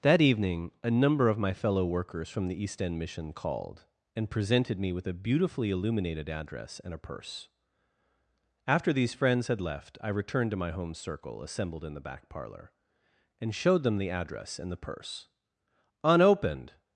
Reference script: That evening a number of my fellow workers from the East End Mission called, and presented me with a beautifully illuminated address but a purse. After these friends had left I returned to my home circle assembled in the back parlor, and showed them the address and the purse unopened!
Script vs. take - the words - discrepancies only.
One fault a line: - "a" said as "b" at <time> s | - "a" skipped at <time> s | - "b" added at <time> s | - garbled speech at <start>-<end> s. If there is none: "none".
- "but" said as "and" at 6.8 s